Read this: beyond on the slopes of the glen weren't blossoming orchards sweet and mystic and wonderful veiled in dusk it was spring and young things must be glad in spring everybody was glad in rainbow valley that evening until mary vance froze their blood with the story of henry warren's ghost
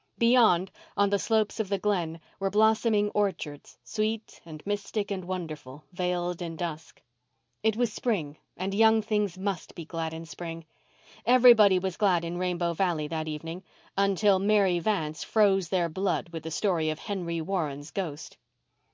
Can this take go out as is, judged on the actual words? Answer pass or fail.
fail